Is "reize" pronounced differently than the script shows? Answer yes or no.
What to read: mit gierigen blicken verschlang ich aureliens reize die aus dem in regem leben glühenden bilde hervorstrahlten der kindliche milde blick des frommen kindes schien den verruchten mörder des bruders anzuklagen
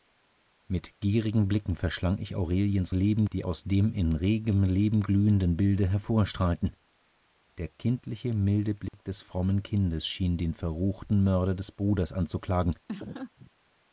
yes